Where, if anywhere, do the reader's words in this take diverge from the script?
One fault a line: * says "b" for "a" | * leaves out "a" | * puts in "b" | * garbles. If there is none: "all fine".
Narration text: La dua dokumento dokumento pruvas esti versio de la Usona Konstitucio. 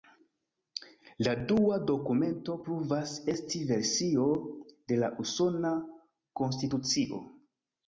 * leaves out "dokumento"